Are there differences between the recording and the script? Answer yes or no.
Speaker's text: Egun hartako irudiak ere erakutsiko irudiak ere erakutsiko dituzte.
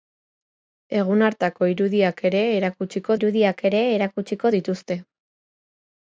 no